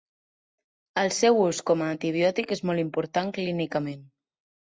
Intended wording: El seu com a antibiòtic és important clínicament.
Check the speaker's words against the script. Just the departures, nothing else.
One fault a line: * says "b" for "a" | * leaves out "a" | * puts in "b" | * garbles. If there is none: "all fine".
* puts in "ús"
* puts in "molt"